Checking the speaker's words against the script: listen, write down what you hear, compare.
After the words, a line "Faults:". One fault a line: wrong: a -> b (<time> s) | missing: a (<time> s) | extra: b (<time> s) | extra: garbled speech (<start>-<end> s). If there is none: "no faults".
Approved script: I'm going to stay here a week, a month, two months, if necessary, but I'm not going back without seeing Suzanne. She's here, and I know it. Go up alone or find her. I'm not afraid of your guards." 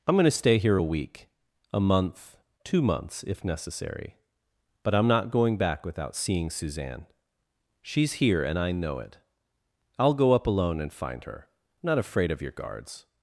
I'm going to stay here a week, a month, two months, if necessary, but I'm not going back without seeing Suzanne. She's here, and I know it. I'll go up alone and find her. I'm not afraid of your guards."
Faults:
extra: I'll (10.0 s)
wrong: or -> and (10.8 s)